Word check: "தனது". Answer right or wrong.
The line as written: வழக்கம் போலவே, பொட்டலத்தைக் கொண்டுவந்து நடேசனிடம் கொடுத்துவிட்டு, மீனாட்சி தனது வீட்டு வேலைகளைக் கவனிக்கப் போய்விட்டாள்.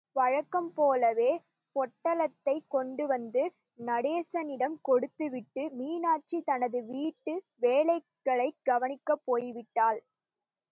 right